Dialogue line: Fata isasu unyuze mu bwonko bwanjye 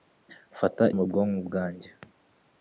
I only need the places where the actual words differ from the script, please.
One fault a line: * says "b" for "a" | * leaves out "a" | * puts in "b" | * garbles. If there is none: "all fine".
* leaves out "isasu unyuze"